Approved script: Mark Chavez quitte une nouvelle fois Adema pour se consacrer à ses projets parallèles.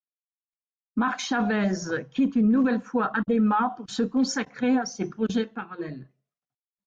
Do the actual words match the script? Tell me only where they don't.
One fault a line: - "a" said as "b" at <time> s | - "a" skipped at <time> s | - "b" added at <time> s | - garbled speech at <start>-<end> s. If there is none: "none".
none